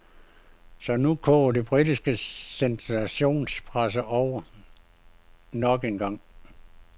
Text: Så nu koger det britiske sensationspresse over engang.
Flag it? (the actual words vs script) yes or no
yes